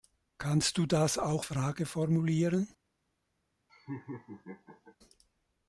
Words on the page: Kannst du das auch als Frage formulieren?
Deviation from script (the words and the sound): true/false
true